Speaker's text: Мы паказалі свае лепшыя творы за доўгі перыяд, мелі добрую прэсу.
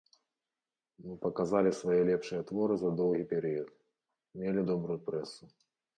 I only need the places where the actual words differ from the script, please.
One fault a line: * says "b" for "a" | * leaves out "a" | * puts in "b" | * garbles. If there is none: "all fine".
all fine